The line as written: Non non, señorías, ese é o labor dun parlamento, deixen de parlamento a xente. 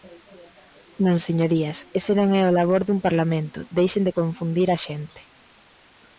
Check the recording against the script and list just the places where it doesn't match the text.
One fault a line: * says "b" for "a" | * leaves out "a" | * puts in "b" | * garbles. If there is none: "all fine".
* leaves out "non"
* puts in "non"
* says "confundir" for "parlamento"